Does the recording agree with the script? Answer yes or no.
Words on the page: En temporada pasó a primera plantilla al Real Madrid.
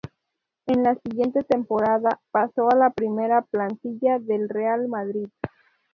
no